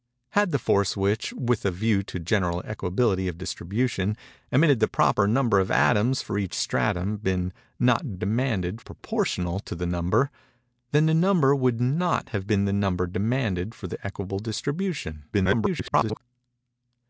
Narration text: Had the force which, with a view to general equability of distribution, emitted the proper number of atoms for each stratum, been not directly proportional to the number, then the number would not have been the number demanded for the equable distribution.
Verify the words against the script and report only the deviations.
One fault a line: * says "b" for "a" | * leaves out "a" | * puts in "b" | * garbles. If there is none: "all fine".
* says "demanded" for "directly"
* garbles